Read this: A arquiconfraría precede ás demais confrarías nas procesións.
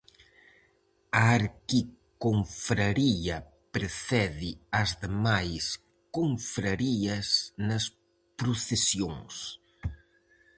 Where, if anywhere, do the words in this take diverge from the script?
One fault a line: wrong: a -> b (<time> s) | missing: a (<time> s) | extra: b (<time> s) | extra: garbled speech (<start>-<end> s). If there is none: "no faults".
no faults